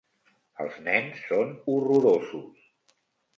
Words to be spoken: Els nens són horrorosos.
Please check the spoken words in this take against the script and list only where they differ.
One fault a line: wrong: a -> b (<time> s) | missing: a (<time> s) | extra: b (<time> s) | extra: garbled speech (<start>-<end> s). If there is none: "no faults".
no faults